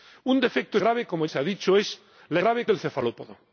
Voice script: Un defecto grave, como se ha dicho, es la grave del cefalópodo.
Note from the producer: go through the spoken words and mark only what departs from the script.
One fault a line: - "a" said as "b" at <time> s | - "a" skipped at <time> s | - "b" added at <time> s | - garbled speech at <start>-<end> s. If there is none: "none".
none